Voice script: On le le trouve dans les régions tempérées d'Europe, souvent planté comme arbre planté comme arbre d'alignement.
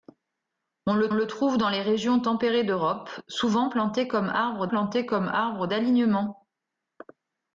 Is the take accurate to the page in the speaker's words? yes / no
yes